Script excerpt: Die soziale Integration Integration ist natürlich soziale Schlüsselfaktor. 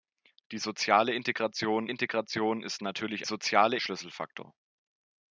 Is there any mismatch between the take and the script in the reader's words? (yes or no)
no